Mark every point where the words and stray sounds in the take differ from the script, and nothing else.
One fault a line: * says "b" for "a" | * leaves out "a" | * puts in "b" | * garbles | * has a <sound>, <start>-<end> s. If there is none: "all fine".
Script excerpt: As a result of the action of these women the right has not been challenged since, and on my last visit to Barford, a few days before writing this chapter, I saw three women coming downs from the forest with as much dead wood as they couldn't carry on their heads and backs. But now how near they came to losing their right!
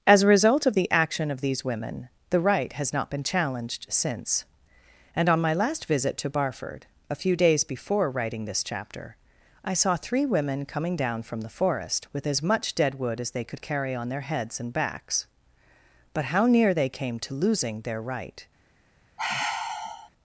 * says "down" for "downs"
* says "could" for "couldn't"
* leaves out "now"
* has a sigh, 19.2-20.1 s